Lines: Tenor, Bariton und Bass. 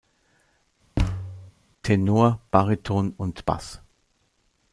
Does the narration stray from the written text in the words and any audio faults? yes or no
yes